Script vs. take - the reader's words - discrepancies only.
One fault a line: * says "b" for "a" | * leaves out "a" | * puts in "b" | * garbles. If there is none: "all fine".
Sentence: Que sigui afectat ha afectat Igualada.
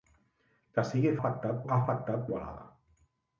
all fine